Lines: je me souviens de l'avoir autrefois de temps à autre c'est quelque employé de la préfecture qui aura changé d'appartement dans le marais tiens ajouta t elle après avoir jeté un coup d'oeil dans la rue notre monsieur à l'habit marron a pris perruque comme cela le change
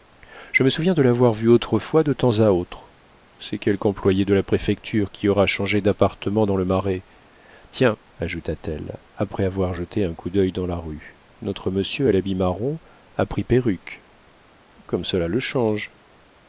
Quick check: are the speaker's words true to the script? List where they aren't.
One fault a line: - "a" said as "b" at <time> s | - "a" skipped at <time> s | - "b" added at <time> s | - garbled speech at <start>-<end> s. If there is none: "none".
- "vu" added at 1.3 s